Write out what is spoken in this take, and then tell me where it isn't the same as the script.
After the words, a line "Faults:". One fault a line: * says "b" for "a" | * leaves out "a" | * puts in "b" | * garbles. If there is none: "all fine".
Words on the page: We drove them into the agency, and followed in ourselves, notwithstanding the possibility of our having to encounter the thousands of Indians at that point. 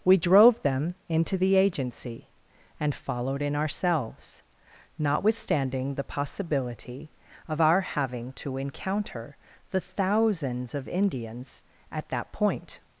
We drove them into the agency, and followed in ourselves, notwithstanding the possibility of our having to encounter the thousands of Indians at that point.
Faults:
all fine